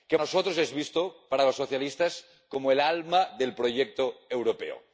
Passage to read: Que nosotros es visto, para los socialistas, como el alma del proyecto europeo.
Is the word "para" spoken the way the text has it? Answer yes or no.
yes